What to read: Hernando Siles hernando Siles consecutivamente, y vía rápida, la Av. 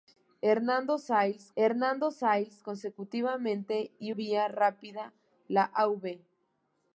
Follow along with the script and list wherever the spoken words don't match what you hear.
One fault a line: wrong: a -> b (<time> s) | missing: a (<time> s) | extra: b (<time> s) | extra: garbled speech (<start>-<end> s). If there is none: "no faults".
no faults